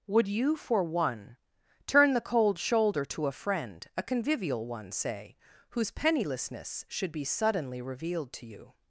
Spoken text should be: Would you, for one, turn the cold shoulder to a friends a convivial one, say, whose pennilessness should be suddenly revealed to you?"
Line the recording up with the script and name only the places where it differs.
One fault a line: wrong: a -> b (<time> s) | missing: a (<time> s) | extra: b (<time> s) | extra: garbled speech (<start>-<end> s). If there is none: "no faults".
wrong: friends -> friend (3.3 s)